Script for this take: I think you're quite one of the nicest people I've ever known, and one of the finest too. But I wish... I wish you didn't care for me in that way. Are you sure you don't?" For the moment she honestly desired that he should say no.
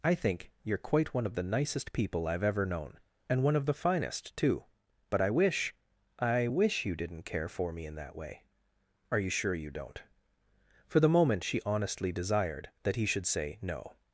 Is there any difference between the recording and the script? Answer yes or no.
no